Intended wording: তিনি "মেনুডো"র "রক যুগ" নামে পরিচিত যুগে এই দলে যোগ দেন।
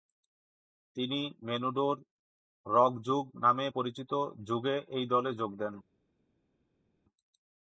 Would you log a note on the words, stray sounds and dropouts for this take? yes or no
no